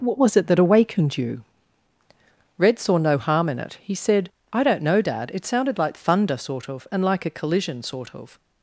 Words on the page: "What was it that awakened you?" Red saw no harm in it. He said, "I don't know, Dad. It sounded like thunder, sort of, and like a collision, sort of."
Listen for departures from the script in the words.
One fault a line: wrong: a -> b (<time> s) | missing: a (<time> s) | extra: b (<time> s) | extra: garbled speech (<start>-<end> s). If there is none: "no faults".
no faults